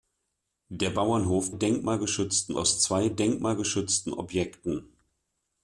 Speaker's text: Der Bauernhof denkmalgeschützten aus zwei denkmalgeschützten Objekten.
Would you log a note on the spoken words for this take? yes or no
no